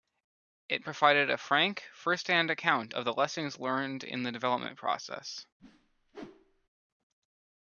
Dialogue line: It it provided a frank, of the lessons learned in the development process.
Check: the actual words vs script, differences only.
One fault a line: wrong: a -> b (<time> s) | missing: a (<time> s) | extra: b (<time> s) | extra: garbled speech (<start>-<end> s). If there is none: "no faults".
missing: it (0.8 s)
extra: first hand account (1.9 s)